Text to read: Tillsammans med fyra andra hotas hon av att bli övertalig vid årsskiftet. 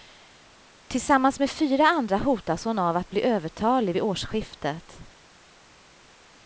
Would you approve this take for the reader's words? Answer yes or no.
yes